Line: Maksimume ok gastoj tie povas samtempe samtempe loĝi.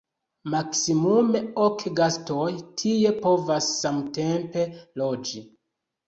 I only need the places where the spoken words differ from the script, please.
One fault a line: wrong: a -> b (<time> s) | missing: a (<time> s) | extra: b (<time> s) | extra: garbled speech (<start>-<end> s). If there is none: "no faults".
missing: samtempe (4.6 s)